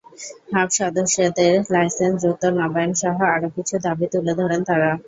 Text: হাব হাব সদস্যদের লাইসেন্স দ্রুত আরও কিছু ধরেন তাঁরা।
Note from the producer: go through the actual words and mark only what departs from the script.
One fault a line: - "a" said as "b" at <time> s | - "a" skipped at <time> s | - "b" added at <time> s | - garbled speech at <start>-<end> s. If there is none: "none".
- "হাব" skipped at 0.7 s
- "নবায়নসহ" added at 2.6 s
- "দাবি তুলে" added at 3.9 s